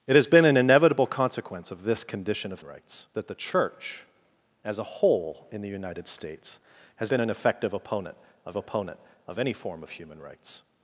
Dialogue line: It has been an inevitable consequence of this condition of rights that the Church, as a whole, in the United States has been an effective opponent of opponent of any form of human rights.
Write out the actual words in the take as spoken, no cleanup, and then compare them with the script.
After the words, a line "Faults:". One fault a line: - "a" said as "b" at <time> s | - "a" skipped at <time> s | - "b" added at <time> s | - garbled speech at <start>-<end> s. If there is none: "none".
It has been an inevitable consequence of this condition of rights that the Church, as a whole, in the United States has been an effective opponent of opponent of any form of human rights.
Faults:
none